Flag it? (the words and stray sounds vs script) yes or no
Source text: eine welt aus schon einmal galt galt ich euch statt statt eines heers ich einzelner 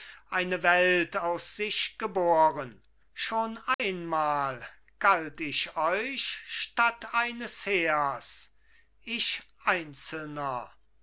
yes